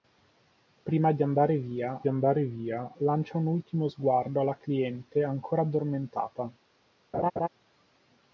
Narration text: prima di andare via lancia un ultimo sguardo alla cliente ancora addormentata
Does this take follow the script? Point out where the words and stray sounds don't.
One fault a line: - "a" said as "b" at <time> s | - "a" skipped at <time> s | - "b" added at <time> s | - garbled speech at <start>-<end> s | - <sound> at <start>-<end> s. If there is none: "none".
- "andare via" added at 2.1 s
- laugh at 7.1-7.5 s